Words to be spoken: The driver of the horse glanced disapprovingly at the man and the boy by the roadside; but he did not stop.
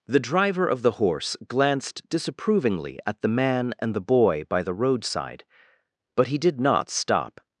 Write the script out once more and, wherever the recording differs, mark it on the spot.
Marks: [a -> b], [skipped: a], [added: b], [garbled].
The driver of the horse glanced disapprovingly at the man and the boy by the roadside; but he did not stop.